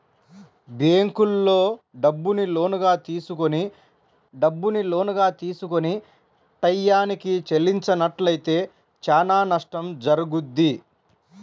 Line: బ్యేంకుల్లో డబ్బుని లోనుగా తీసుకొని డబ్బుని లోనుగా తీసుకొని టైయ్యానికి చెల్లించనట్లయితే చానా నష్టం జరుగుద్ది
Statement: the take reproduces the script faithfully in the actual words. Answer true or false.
true